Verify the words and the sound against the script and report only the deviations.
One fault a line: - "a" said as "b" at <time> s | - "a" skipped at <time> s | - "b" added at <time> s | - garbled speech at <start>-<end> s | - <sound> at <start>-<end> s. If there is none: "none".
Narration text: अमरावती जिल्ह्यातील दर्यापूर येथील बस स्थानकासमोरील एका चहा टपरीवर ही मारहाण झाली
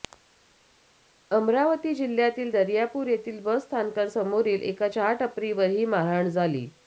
none